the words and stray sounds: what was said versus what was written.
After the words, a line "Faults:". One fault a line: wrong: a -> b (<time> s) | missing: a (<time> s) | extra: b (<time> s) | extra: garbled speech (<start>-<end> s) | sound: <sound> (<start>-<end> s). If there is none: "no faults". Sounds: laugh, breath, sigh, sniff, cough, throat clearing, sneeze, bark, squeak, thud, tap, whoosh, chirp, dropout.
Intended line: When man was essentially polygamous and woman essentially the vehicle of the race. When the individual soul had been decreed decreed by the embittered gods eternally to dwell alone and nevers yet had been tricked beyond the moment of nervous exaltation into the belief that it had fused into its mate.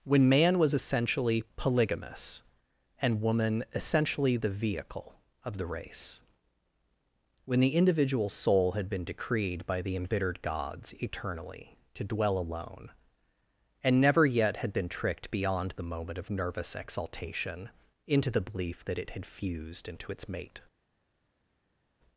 When man was essentially polygamous and woman essentially the vehicle of the race. When the individual soul had been decreed by the embittered gods eternally to dwell alone and never yet had been tricked beyond the moment of nervous exaltation into the belief that it had fused into its mate.
Faults:
missing: decreed (9.7 s)
wrong: nevers -> never (14.0 s)